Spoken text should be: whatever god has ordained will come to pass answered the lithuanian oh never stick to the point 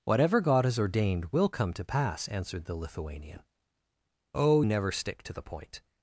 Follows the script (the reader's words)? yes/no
yes